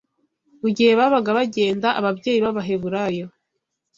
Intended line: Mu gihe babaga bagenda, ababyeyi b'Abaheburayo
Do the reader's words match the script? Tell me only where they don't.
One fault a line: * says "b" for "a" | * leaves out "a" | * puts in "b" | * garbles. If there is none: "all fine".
all fine